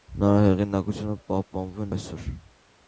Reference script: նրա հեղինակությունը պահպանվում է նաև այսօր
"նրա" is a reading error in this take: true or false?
false